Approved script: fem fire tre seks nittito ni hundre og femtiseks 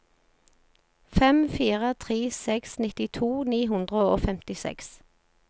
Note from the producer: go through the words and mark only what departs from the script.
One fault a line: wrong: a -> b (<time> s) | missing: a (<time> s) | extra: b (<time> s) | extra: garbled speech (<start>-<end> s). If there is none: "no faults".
no faults